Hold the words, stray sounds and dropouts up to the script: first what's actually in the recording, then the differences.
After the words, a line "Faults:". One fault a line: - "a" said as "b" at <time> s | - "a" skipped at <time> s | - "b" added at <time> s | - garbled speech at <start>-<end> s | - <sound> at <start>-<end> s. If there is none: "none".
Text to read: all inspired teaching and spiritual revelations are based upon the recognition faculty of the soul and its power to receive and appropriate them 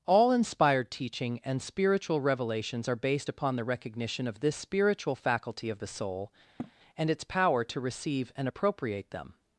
all inspired teaching and spiritual revelations are based upon the recognition of this spiritual faculty of the soul and its power to receive and appropriate them
Faults:
- "of this spiritual" added at 4.3 s
- sniff at 6.6-6.7 s